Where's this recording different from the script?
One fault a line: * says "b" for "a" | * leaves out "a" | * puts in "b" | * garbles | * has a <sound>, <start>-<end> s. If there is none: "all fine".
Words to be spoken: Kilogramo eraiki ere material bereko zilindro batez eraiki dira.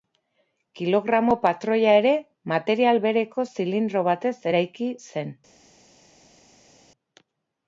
* says "patroia" for "eraiki"
* says "zen" for "dira"